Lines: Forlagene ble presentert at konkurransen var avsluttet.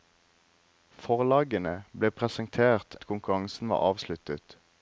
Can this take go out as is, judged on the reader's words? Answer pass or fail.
pass